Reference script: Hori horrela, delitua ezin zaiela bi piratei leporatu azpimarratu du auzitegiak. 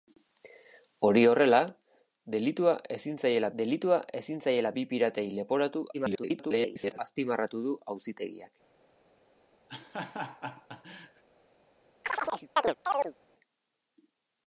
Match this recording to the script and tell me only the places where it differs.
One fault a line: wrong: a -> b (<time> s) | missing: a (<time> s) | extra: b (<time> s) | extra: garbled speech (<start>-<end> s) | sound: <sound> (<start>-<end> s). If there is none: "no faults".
extra: delitua ezin zaiela (3.6 s)
extra: garbled speech (5.9-7.0 s)
sound: laugh (9.7-11.2 s)
sound: chirp (12.0-13.1 s)